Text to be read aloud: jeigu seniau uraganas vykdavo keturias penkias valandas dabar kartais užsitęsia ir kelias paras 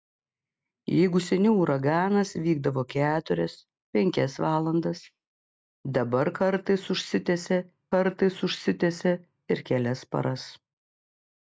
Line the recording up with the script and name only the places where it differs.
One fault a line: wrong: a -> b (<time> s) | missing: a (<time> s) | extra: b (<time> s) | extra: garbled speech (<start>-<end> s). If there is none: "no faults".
extra: kartais užsitęsia (7.9 s)